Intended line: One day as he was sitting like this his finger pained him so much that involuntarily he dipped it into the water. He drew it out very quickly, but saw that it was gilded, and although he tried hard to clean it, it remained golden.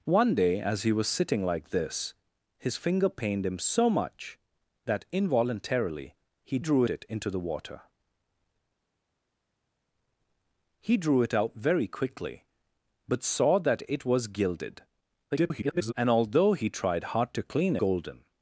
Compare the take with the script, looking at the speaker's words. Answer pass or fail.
fail